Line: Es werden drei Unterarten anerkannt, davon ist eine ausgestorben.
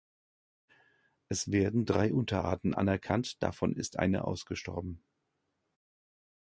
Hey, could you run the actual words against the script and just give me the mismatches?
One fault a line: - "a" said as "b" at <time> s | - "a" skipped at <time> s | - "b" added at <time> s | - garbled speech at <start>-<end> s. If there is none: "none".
none